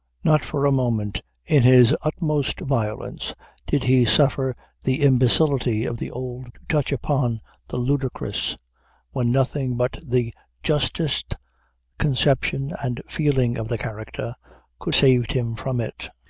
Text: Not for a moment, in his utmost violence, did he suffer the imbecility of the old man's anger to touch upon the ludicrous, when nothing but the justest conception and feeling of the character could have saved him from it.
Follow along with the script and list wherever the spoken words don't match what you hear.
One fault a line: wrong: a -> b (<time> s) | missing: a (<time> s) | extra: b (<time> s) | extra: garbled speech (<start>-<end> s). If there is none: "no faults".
missing: man's anger (6.5 s)
missing: have (14.9 s)